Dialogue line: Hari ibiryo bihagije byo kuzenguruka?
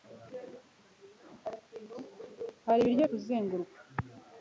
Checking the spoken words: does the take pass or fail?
fail